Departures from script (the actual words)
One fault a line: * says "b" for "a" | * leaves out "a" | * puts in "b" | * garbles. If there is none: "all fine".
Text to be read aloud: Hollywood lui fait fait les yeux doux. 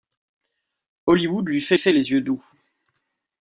all fine